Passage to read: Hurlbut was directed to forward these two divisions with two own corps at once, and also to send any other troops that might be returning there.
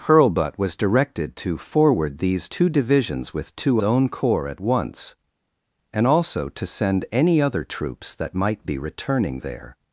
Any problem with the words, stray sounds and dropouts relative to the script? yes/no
no